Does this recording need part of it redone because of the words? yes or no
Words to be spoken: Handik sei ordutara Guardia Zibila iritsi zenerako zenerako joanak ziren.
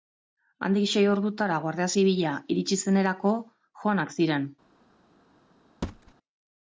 yes